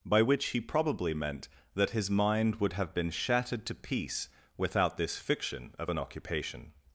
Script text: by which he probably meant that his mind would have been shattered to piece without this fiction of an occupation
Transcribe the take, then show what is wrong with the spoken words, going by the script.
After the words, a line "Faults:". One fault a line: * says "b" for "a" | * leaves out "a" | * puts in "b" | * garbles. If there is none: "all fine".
by which he probably meant that his mind would have been shattered to piece without this fiction of an occupation
Faults:
all fine